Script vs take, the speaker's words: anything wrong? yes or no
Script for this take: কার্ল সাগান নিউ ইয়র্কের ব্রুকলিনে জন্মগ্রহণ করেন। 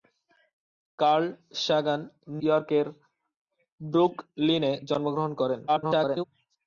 yes